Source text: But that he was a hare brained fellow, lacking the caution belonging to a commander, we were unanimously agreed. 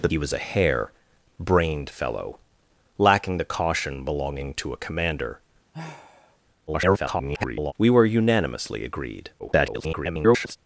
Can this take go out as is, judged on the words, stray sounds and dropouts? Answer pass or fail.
fail